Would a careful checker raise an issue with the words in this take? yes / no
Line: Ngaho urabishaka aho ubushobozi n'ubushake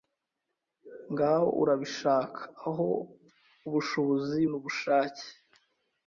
no